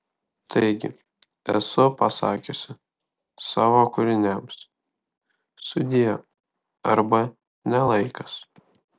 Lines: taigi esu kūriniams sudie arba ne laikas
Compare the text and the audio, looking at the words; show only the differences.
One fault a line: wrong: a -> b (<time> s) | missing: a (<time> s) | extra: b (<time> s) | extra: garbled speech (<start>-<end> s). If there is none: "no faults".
extra: pasakiusi savo (2.0 s)